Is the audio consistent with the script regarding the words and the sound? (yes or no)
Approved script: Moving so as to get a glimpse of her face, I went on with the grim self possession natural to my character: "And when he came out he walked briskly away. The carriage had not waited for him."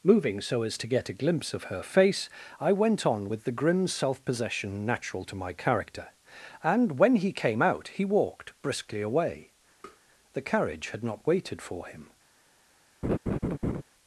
no